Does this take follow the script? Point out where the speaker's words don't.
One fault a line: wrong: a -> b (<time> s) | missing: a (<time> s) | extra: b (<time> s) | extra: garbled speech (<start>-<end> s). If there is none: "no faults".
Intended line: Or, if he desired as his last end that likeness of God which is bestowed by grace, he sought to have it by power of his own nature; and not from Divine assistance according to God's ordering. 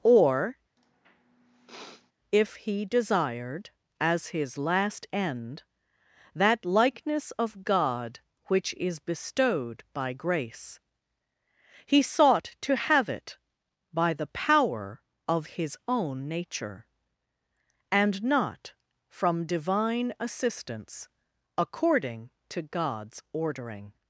extra: the (14.1 s)